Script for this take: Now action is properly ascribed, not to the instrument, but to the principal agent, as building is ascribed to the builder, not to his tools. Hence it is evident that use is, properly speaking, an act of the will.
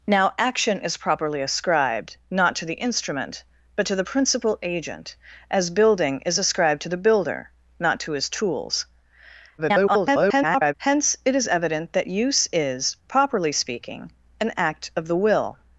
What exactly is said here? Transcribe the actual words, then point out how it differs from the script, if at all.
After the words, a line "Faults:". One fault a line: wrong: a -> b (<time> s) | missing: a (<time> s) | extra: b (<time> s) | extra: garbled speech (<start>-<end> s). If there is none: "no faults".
Now action is properly ascribed, not to the instrument, but to the principal agent, as building is ascribed to the builder, not to his tools. [garbled] Hence it is evident that use is, properly speaking, an act of the will.
Faults:
extra: garbled speech (9.6-10.7 s)